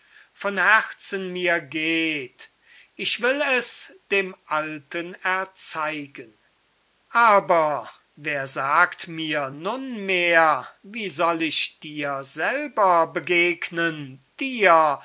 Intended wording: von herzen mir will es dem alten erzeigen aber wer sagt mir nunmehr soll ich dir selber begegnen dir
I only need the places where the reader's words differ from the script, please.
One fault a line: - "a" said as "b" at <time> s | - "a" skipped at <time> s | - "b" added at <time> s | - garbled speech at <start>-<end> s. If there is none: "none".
- "geht ich" added at 1.6 s
- "wie" added at 10.8 s